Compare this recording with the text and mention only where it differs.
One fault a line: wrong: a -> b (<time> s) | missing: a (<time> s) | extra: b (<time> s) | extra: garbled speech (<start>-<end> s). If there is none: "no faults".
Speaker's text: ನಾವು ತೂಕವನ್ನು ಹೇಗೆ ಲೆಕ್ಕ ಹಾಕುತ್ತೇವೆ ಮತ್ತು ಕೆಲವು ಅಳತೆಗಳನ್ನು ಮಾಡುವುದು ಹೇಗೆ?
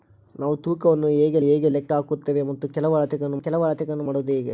extra: ಹೇಗೆ (1.4 s)
extra: ಕೆಲವು ಅಳತೆಗಳನ್ನು (3.4 s)